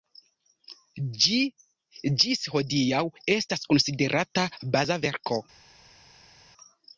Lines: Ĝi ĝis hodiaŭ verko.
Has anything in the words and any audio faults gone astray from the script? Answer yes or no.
yes